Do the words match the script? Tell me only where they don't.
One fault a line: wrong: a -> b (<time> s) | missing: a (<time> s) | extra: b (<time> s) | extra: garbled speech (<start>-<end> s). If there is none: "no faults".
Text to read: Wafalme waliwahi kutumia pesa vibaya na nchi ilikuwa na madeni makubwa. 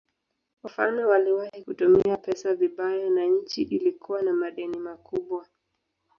no faults